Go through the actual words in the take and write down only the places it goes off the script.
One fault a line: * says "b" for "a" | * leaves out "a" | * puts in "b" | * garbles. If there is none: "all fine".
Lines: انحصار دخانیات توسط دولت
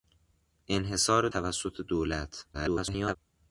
* leaves out "دخانیات"
* garbles